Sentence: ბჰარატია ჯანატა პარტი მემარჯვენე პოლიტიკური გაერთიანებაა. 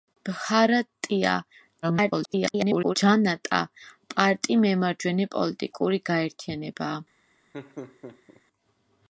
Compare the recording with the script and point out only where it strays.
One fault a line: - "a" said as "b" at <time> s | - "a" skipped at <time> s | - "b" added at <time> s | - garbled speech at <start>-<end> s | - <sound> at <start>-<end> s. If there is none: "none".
- garbled speech at 1.8-3.0 s
- laugh at 7.5-8.4 s